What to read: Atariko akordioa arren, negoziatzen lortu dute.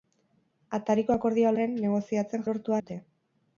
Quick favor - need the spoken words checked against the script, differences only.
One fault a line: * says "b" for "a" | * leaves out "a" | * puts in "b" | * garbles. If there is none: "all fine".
all fine